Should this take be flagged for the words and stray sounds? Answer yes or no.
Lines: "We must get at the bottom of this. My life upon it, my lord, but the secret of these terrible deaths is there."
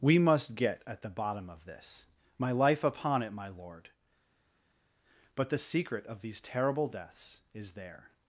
no